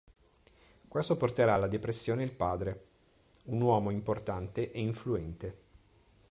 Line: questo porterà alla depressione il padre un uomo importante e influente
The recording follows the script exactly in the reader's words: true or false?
true